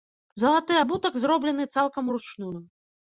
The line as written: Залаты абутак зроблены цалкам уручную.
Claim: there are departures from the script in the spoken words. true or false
false